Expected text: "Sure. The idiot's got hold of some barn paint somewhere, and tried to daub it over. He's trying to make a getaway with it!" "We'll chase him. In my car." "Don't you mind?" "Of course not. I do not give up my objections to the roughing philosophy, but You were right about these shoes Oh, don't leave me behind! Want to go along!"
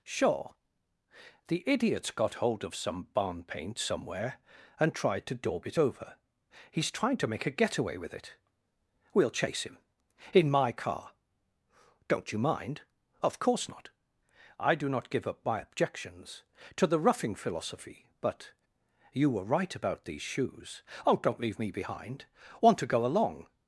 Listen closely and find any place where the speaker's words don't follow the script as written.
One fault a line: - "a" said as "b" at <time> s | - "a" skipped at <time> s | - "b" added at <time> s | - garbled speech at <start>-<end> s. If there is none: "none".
none